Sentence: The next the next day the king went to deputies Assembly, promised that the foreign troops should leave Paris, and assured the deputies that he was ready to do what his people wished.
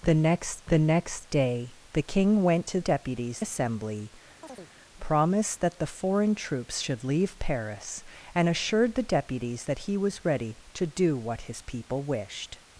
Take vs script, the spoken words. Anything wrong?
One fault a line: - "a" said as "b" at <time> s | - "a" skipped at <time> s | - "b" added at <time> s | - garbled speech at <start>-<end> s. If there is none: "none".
none